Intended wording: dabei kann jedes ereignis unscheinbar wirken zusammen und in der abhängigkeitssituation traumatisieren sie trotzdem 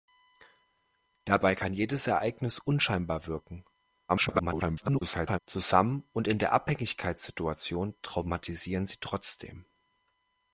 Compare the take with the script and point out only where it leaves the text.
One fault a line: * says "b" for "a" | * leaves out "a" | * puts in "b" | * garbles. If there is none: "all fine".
* garbles